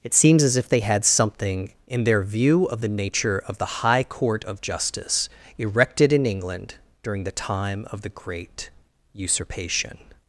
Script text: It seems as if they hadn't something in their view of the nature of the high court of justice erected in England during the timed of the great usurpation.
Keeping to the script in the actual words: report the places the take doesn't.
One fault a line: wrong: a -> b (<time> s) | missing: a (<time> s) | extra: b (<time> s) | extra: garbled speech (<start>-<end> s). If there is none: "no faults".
wrong: hadn't -> had (0.8 s)
wrong: timed -> time (7.3 s)